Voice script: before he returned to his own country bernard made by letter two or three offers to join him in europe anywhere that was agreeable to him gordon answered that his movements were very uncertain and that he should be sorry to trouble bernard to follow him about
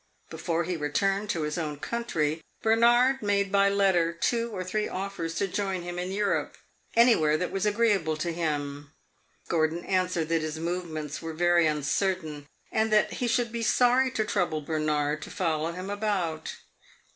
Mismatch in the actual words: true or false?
false